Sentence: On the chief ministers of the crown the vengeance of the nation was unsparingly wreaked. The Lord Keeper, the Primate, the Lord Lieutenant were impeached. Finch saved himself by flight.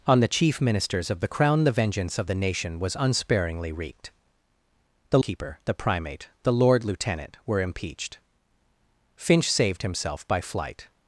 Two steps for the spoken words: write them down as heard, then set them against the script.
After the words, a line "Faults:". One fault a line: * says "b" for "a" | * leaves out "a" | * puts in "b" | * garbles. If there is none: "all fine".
On the chief ministers of the crown the vengeance of the nation was unsparingly wreaked. The Keeper, the Primate, the Lord Lieutenant were impeached. Finch saved himself by flight.
Faults:
* leaves out "Lord"